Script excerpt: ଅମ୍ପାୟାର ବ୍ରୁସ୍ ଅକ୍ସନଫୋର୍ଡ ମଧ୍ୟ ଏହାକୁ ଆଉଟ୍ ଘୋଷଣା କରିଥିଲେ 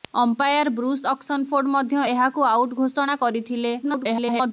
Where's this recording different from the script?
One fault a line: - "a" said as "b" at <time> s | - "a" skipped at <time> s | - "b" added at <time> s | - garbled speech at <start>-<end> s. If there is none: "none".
- garbled speech at 3.8-4.5 s